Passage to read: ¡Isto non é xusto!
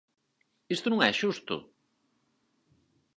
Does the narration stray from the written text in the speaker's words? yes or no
no